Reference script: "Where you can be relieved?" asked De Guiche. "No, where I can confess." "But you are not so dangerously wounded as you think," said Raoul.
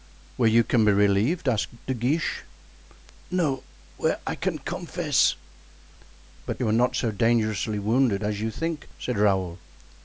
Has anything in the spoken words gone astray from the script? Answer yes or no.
no